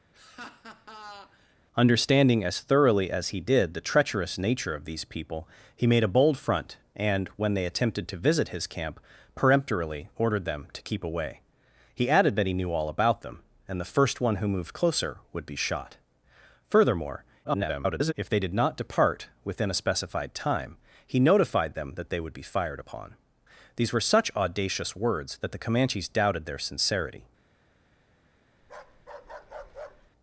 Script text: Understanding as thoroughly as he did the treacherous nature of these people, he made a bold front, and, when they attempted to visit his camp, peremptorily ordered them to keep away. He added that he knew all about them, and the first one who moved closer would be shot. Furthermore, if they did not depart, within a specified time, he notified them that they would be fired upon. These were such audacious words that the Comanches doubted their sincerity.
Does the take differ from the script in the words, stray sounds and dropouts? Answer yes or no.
yes